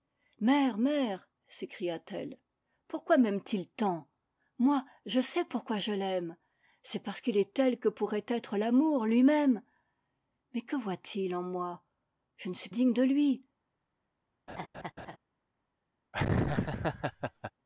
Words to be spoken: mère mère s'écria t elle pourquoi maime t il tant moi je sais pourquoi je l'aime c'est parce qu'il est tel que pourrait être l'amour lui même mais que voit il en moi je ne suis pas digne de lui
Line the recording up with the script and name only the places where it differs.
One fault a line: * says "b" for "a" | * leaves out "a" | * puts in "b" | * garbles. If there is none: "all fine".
* leaves out "pas"